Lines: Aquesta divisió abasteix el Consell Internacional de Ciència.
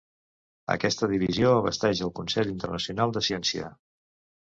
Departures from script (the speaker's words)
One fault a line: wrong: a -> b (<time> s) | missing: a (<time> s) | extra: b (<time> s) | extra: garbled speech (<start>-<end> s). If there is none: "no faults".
no faults